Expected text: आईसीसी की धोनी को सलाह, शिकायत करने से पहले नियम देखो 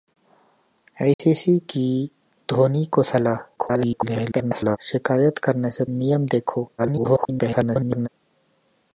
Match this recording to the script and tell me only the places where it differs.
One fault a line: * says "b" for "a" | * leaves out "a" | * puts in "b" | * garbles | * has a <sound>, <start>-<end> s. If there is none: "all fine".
* has a dropout, 1.1-1.2 s
* garbles
* leaves out "पहले"
* garbles